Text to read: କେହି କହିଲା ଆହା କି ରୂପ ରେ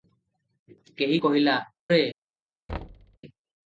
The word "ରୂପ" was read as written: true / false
false